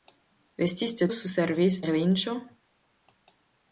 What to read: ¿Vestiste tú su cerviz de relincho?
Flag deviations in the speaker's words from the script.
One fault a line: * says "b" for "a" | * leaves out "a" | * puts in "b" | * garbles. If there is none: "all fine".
* leaves out "tú"
* leaves out "de"